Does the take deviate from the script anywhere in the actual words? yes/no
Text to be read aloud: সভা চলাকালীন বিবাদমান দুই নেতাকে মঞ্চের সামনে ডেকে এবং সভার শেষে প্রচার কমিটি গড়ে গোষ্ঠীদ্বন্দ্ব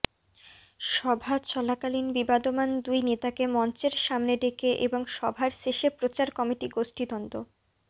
yes